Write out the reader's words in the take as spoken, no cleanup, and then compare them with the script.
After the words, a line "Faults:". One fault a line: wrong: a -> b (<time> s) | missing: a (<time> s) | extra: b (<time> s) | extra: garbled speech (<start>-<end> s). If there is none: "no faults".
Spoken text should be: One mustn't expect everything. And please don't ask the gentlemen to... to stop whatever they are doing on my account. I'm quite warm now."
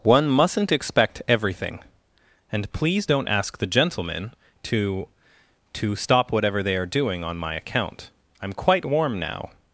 One mustn't expect everything. And please don't ask the gentlemen to... to stop whatever they are doing on my account. I'm quite warm now."
Faults:
no faults